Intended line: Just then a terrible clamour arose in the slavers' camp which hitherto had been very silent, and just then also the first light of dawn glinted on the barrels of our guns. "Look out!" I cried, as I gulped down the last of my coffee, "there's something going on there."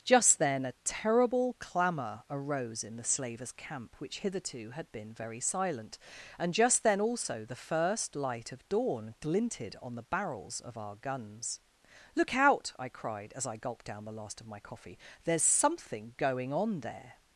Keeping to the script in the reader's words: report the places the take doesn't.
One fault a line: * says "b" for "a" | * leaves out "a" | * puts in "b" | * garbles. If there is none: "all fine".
all fine